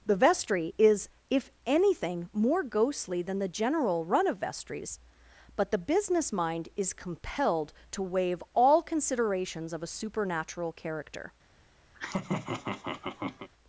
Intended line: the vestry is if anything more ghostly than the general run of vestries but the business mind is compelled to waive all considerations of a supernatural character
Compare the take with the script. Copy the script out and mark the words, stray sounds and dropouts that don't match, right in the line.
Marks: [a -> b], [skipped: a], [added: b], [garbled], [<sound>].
the vestry is if anything more ghostly than the general run of vestries but the business mind is compelled to waive all considerations of a supernatural character [laugh]